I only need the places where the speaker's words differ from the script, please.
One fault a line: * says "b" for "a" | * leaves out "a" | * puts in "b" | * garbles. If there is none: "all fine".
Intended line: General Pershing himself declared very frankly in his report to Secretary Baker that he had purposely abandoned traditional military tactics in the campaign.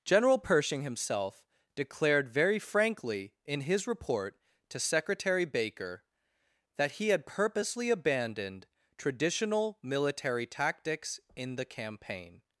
all fine